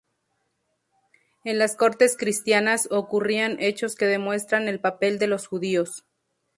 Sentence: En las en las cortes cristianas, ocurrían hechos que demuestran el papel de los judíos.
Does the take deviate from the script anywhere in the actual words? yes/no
yes